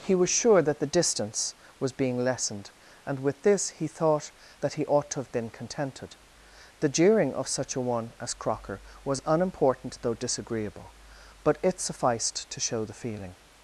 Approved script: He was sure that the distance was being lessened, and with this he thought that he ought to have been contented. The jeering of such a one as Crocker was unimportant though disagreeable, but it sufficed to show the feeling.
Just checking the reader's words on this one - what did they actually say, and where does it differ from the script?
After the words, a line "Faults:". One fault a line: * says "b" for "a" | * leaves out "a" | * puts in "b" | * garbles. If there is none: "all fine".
He was sure that the distance was being lessened, and with this he thought that he ought to have been contented. The jeering of such a one as Crocker was unimportant though disagreeable, but it sufficed to show the feeling.
Faults:
all fine